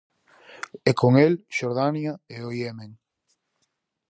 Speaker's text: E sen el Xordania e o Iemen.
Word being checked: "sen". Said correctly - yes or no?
no